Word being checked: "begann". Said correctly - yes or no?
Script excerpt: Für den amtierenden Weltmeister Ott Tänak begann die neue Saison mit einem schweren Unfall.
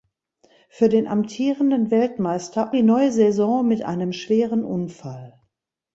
no